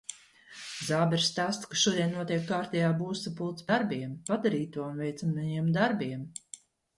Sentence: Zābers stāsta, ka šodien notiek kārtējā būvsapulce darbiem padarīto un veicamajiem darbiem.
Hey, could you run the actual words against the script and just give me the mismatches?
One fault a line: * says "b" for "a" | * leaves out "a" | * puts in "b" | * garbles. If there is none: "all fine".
all fine